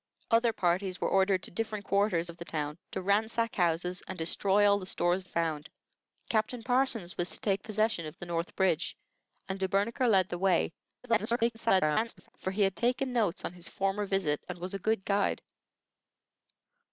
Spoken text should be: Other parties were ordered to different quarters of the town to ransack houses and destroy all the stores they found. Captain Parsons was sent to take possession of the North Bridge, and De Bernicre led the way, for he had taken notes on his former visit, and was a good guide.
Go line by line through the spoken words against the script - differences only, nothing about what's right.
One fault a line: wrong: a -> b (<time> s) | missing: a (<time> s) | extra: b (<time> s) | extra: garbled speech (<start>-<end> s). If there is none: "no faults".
missing: they (5.2 s)
missing: sent (7.3 s)
extra: garbled speech (11.0-12.3 s)